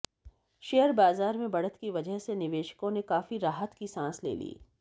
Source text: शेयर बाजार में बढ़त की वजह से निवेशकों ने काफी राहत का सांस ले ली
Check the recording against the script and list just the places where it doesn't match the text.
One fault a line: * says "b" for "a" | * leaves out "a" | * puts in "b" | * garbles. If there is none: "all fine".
* says "की" for "का"